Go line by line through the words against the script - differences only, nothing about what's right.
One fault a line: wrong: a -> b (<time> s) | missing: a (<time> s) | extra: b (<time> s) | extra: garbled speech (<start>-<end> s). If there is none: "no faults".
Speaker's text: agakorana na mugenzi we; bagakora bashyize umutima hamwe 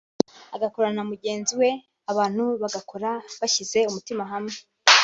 extra: abantu (2.1 s)